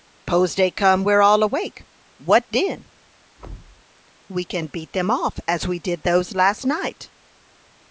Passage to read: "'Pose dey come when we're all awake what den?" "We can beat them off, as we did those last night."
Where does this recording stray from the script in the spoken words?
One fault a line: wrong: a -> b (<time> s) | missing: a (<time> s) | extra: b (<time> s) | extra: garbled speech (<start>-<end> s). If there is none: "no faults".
missing: when (1.0 s)